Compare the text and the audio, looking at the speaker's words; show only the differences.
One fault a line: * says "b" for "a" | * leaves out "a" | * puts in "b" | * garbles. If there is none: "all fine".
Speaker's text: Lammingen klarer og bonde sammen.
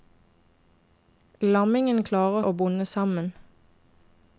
all fine